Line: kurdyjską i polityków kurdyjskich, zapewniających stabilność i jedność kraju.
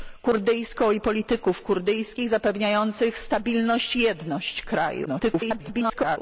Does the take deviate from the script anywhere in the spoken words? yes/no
yes